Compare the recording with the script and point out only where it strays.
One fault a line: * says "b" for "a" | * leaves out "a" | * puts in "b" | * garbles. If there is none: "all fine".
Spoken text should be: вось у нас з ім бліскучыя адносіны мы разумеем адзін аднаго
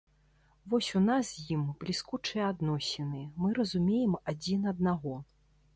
all fine